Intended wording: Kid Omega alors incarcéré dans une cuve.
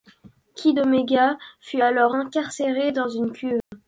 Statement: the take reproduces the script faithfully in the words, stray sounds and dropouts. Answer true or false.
false